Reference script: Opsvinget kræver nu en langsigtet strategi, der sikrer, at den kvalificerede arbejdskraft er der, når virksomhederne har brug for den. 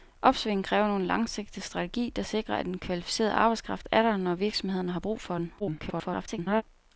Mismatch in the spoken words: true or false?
true